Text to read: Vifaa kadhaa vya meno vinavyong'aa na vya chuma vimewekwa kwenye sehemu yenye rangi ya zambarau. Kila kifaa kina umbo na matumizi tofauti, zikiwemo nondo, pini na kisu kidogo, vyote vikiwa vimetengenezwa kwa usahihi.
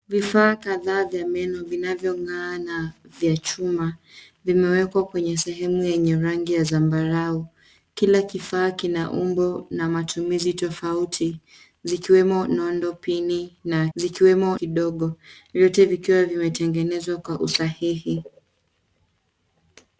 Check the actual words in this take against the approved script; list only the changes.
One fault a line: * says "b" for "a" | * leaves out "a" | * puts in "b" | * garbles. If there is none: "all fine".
* says "zikiwemo" for "kisu"